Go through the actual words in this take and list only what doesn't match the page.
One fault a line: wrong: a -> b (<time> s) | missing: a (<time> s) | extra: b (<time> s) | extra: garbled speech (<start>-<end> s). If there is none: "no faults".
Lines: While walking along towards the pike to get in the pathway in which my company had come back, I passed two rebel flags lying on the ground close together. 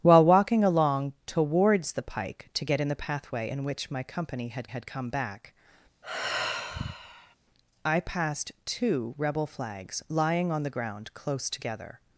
extra: had (4.6 s)